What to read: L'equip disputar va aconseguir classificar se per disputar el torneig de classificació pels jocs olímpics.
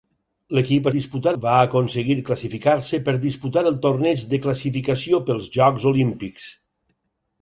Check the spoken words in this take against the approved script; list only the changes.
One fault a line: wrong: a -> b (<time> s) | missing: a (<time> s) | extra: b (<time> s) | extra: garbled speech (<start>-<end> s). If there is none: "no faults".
no faults